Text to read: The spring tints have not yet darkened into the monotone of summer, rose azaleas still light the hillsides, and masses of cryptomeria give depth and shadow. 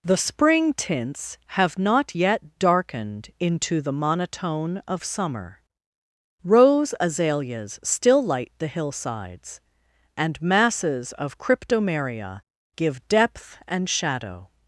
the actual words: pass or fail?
pass